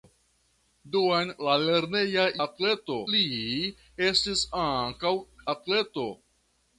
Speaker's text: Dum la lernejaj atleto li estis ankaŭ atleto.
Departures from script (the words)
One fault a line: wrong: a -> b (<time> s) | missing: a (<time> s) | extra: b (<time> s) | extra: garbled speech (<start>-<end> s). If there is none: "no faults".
no faults